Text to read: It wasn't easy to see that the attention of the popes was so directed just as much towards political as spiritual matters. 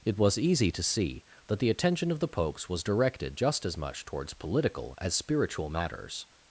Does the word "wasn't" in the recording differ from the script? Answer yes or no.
yes